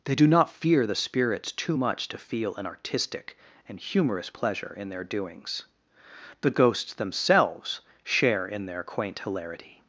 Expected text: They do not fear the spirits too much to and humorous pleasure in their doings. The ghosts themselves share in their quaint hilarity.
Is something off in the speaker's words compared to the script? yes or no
yes